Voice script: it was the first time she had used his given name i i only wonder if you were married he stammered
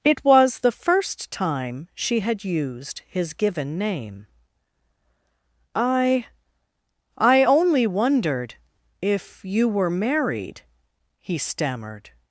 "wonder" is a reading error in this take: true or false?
true